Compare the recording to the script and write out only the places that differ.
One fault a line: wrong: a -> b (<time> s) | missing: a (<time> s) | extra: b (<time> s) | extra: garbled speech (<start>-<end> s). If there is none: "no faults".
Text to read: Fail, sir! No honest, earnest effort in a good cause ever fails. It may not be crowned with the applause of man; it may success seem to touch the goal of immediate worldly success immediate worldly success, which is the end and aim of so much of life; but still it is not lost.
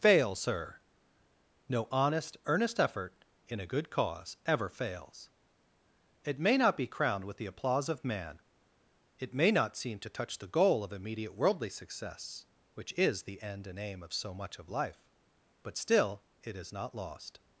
wrong: success -> not (9.5 s)
missing: immediate worldly success (12.5 s)